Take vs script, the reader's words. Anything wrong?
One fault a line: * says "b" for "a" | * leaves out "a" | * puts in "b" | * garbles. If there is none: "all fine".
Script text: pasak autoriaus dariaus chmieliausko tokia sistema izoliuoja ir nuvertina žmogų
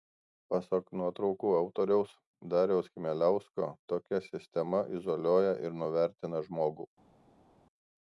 * puts in "nuotraukų"